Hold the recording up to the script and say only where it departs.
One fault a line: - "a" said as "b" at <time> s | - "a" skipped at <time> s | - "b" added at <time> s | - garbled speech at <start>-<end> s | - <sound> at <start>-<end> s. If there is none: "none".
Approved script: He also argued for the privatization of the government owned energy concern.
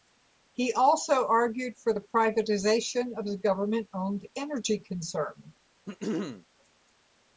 - throat clearing at 5.9-6.5 s